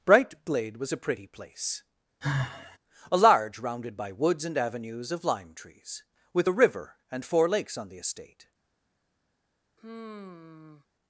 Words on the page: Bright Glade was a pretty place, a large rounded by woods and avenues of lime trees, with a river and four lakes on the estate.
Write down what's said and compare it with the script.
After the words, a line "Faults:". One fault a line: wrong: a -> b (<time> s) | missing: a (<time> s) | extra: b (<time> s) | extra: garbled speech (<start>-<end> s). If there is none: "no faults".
Bright Glade was a pretty place, a large rounded by woods and avenues of lime trees, with a river and four lakes on the estate.
Faults:
no faults